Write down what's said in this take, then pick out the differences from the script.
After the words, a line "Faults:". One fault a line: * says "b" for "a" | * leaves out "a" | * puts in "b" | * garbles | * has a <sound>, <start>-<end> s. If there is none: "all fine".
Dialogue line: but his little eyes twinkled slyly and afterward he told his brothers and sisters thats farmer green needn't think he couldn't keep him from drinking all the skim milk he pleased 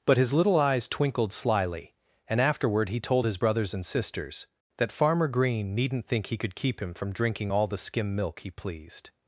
but his little eyes twinkled slyly and afterward he told his brothers and sisters that farmer green needn't think he could keep him from drinking all the skim milk he pleased
Faults:
* says "that" for "thats"
* says "could" for "couldn't"